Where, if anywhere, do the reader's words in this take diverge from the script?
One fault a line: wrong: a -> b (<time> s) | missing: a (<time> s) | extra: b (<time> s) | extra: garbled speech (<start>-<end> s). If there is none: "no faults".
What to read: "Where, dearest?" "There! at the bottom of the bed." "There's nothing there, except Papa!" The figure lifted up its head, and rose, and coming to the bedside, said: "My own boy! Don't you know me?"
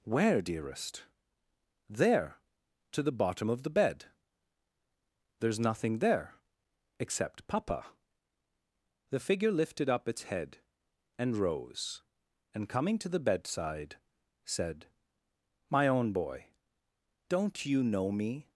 wrong: at -> to (2.9 s)